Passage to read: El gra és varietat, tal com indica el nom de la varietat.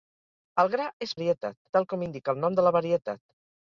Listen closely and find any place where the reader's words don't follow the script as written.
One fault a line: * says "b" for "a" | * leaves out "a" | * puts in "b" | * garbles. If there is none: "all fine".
all fine